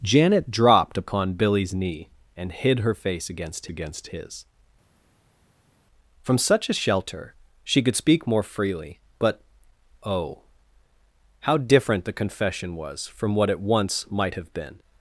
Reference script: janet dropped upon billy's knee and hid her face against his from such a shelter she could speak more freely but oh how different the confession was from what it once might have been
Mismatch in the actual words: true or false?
true